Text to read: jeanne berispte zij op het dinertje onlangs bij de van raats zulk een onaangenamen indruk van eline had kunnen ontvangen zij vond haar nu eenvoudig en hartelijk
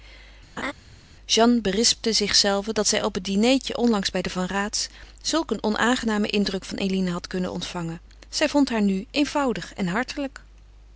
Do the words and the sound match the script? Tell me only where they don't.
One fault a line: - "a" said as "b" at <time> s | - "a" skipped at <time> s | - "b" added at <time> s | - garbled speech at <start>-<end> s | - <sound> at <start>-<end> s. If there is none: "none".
- laugh at 0.6-0.7 s
- "zichzelve dat" added at 2.1 s